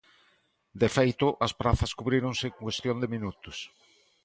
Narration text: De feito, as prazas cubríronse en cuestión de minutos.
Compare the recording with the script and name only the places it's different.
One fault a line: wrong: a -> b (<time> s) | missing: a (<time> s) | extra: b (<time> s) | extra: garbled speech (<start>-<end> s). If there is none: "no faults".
no faults